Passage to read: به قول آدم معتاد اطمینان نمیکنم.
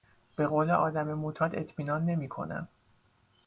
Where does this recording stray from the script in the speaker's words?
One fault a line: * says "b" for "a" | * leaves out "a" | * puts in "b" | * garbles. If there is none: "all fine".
all fine